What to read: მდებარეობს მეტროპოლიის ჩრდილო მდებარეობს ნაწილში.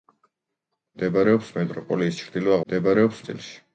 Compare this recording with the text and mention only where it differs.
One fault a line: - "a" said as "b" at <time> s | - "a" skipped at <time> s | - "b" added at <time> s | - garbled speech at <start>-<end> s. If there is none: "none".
none